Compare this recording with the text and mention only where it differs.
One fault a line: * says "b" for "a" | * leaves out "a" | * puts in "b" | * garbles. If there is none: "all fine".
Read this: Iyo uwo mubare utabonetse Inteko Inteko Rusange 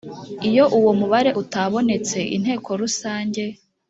* leaves out "Inteko"